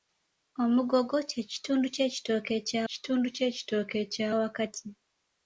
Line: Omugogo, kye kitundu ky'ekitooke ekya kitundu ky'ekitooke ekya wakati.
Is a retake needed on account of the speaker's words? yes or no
no